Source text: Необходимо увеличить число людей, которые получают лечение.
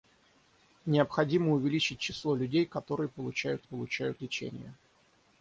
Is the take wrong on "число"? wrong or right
right